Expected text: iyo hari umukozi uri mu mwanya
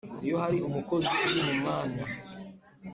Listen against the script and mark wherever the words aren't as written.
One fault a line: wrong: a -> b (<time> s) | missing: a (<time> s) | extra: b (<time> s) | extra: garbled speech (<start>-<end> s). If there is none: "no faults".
no faults